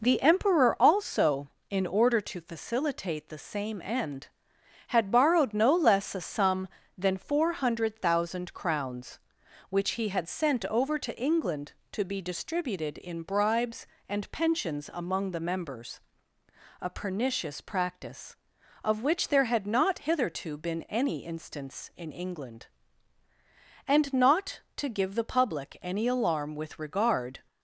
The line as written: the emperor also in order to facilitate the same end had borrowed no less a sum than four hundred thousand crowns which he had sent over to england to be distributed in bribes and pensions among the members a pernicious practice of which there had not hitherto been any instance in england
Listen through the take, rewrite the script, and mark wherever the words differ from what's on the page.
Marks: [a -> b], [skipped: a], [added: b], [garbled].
the emperor also in order to facilitate the same end had borrowed no less a sum than four hundred thousand crowns which he had sent over to england to be distributed in bribes and pensions among the members a pernicious practice of which there had not hitherto been any instance in england [added: and not to give the public any alarm with regard]